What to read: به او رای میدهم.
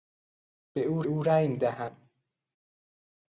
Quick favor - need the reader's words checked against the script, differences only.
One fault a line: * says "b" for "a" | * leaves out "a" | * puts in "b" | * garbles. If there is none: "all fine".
* puts in "او"